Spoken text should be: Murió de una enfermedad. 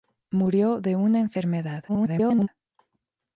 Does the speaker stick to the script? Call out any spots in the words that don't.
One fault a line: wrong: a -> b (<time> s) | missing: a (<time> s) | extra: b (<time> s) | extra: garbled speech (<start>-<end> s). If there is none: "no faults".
extra: garbled speech (1.9-2.5 s)